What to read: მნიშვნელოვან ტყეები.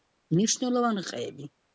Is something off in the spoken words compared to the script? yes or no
no